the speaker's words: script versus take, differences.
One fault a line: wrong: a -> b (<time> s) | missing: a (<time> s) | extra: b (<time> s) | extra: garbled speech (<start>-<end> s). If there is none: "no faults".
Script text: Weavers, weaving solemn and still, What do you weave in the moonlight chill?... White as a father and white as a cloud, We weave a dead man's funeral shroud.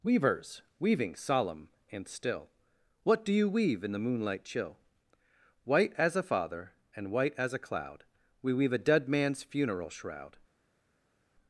no faults